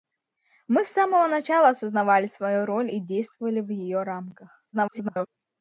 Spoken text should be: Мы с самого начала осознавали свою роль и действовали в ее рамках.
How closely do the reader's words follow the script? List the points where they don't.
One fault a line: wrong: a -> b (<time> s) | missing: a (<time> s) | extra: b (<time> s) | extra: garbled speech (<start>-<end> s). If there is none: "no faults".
extra: garbled speech (4.7-5.3 s)